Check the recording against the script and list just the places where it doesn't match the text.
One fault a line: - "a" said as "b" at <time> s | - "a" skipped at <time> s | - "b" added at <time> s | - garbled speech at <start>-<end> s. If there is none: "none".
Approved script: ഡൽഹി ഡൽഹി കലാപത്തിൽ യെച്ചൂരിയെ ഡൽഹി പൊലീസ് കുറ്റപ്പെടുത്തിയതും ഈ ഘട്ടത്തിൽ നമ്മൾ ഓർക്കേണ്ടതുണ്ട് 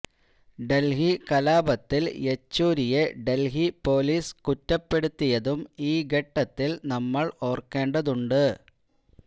- "ഡൽഹി" skipped at 1.1 s